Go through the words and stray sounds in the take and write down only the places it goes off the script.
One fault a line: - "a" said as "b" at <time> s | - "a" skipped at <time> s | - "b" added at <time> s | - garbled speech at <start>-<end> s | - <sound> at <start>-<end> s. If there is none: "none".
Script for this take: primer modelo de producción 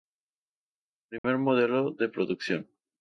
- dropout at 1.2-1.2 s